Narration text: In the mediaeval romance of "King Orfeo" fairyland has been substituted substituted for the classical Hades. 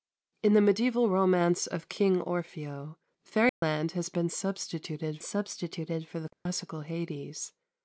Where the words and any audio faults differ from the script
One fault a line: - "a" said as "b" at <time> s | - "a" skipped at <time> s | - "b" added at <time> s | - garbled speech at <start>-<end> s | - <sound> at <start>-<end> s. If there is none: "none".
- dropout at 3.5-3.6 s
- dropout at 6.3-6.5 s